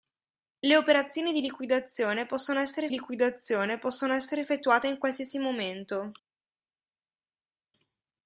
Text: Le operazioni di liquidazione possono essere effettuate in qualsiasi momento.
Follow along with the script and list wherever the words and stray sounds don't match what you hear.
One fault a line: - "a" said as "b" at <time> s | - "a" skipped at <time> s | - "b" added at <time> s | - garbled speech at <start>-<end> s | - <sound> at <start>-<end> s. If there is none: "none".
- "liquidazione possono essere" added at 2.9 s